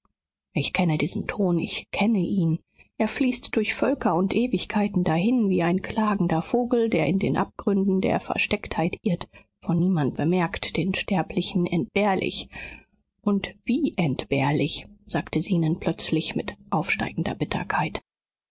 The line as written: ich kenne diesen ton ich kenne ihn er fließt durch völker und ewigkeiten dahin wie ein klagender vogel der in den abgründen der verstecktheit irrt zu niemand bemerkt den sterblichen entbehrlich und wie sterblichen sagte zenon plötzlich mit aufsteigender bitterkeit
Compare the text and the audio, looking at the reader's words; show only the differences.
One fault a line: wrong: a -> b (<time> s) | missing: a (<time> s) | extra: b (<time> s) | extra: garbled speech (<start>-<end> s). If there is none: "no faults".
wrong: zu -> von (9.6 s)
wrong: sterblichen -> entbehrlich (14.0 s)